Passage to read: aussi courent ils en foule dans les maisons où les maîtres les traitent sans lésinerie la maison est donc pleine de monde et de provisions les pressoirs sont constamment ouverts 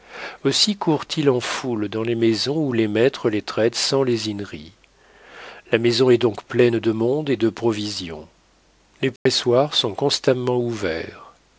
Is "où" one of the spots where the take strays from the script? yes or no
no